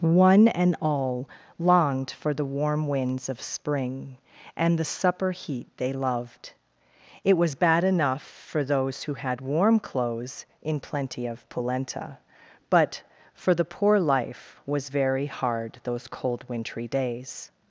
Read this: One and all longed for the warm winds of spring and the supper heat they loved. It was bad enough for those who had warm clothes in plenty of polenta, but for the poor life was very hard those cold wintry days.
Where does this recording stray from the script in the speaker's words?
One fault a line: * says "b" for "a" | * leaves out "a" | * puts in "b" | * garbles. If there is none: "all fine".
all fine